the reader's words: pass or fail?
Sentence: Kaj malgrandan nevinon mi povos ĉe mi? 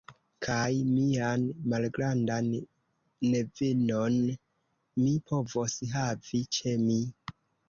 fail